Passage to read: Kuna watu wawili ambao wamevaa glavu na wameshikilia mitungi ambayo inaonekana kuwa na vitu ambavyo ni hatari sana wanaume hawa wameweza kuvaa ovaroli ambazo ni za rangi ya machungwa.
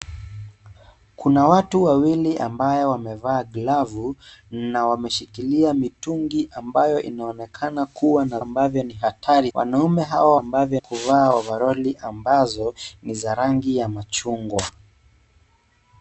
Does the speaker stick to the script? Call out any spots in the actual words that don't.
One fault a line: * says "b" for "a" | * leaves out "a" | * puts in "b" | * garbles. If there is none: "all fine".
* leaves out "vitu"
* leaves out "sana"
* says "ambavyo" for "wameweza"